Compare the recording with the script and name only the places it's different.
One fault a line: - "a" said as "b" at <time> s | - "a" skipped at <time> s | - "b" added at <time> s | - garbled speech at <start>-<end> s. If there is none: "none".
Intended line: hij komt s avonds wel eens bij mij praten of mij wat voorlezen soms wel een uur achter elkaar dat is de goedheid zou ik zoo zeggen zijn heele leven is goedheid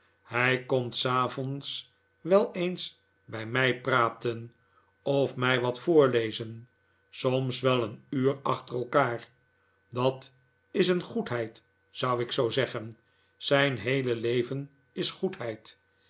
- "de" said as "een" at 10.9 s